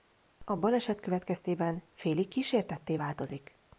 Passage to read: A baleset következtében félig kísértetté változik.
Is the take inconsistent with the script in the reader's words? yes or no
no